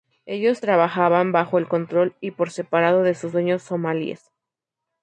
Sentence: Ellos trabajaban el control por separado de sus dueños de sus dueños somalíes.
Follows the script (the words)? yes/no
no